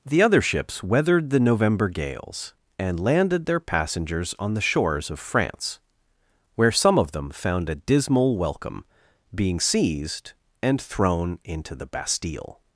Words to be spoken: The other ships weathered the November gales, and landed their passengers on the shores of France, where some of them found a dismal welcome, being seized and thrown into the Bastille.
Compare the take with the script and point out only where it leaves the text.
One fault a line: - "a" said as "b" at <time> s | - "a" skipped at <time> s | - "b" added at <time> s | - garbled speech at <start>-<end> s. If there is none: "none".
none